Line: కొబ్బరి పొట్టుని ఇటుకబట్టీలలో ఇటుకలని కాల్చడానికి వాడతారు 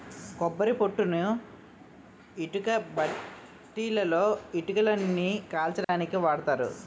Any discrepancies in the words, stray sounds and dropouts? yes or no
yes